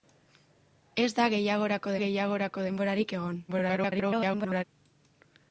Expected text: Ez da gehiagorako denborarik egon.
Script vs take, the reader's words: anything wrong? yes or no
yes